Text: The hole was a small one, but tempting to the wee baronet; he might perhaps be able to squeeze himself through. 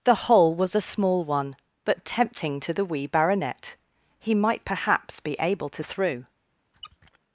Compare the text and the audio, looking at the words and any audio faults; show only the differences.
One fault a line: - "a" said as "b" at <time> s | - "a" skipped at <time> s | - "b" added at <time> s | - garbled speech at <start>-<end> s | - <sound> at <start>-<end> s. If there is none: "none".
- "squeeze himself" skipped at 5.8 s
- squeak at 6.7-7.2 s